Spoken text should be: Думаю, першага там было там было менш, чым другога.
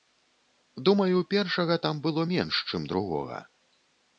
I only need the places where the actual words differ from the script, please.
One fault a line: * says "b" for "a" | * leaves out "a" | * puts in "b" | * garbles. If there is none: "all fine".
* leaves out "там было"